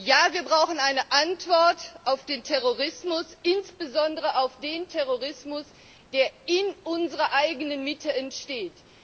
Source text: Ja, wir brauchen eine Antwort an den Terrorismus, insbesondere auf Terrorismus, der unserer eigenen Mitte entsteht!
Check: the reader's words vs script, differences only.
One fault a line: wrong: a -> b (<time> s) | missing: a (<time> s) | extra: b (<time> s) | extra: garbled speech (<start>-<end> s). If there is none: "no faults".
wrong: an -> auf (2.0 s)
extra: den (4.6 s)
extra: in (6.5 s)